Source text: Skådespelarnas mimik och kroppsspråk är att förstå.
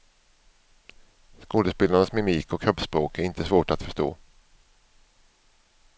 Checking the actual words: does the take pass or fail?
fail